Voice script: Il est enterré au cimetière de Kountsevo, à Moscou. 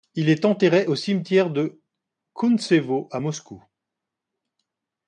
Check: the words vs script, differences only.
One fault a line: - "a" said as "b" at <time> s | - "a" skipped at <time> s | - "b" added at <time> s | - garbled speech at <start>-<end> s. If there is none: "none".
none